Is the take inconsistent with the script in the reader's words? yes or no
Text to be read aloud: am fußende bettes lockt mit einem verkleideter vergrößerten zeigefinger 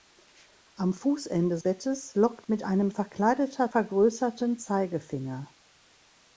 no